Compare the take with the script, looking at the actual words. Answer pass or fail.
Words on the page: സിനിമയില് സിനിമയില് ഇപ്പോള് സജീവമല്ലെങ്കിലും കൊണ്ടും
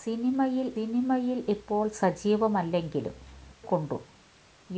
pass